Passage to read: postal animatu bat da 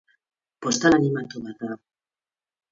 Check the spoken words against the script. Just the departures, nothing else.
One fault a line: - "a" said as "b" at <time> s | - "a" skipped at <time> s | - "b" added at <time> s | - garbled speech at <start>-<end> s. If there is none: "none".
none